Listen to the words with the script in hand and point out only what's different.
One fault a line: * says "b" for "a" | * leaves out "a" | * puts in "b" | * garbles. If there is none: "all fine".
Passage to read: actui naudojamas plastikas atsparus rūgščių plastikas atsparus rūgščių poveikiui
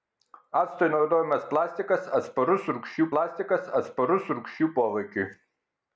all fine